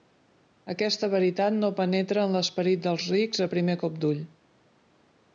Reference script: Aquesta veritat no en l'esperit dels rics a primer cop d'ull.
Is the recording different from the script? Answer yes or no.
yes